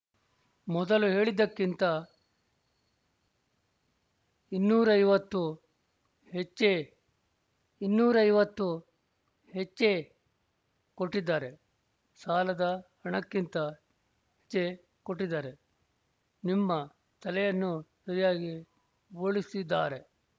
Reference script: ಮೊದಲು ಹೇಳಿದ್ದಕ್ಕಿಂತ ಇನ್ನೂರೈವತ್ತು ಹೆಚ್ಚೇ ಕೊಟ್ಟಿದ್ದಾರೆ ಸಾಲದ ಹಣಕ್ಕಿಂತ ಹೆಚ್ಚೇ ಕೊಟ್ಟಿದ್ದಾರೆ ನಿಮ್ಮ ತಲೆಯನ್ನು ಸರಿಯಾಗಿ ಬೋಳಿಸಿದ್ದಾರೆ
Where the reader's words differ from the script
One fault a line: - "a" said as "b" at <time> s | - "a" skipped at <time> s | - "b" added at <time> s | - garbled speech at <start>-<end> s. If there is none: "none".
- "ಇನ್ನೂರೈವತ್ತು ಹೆಚ್ಚೇ" added at 7.8 s